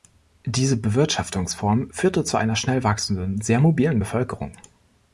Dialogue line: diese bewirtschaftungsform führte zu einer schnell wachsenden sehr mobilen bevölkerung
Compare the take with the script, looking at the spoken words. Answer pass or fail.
pass